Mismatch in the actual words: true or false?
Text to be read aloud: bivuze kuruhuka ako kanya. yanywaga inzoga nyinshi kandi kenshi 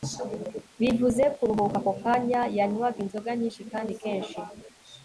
false